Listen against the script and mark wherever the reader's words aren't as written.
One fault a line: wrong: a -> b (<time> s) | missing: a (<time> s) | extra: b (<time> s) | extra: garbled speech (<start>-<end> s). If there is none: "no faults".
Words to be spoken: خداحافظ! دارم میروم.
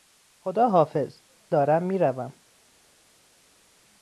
no faults